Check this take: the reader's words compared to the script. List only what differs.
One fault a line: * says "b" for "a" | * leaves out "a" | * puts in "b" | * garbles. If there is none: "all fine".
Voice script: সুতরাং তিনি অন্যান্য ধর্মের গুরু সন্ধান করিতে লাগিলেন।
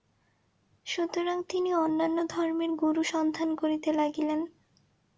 all fine